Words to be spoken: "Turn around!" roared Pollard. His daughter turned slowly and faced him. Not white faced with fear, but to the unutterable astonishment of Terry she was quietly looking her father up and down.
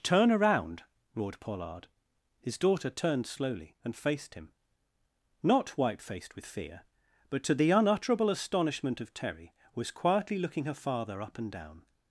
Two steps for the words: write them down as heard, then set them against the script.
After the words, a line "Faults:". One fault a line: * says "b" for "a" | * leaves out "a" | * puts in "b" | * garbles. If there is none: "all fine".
"Turn around!" roared Pollard. His daughter turned slowly and faced him. Not white faced with fear, but to the unutterable astonishment of Terry was quietly looking her father up and down.
Faults:
* leaves out "she"